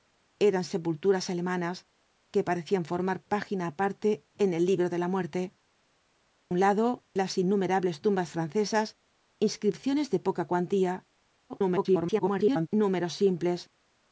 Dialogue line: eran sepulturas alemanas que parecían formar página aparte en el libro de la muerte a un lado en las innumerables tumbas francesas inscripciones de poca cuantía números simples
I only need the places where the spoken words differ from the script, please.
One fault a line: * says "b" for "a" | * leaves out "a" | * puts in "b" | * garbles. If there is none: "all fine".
* leaves out "a"
* leaves out "en"
* garbles